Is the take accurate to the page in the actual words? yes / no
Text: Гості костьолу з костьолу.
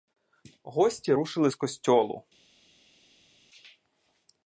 no